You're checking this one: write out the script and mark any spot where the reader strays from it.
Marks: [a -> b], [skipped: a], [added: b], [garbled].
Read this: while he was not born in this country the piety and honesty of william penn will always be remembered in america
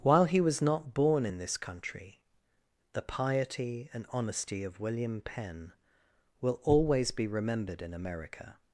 while he was not born in this country the piety and honesty of william penn will always be remembered in america